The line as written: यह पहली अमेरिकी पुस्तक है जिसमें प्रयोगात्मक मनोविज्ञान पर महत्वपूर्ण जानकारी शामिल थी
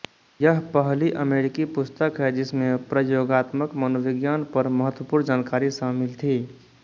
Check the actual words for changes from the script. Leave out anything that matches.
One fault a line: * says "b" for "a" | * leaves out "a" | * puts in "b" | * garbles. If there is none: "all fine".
all fine